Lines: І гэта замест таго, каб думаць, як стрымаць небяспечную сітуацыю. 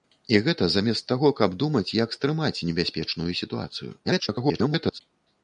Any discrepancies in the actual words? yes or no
yes